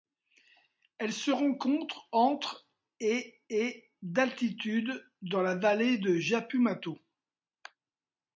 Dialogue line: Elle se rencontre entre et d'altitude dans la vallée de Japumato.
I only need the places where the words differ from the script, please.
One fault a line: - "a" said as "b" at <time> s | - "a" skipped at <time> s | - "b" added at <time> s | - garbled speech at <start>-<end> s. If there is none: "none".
- "et" added at 3.5 s